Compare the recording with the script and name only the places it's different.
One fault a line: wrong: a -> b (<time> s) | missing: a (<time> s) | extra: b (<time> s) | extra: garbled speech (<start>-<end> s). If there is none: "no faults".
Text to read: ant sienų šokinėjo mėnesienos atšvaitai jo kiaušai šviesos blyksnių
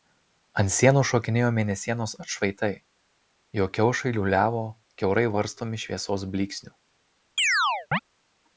extra: liūliavo kiaurai varstomi (4.2 s)